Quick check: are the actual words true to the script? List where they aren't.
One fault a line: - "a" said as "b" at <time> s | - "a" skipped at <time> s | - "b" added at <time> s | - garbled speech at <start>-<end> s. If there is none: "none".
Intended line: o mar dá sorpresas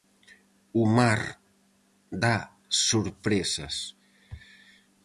none